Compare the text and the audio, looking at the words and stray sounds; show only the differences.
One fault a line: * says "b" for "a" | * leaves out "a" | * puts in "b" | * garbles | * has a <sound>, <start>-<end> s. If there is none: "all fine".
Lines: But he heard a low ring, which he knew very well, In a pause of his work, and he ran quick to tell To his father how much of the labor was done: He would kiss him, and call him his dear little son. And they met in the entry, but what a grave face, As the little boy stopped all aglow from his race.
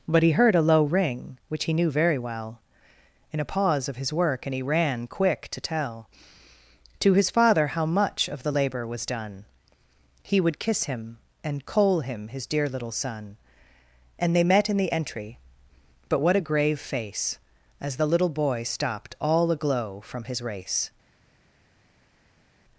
* says "coal" for "call"